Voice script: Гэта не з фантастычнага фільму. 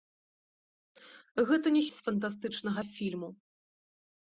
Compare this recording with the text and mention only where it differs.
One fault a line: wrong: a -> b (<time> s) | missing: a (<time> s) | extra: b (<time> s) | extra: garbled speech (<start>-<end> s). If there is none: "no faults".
no faults